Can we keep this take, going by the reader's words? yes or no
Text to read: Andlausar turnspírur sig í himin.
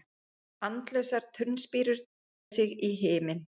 yes